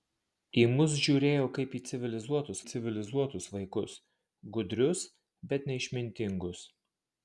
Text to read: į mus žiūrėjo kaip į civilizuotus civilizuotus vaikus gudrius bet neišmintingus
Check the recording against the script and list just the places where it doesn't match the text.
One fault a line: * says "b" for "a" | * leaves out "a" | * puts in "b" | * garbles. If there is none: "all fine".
all fine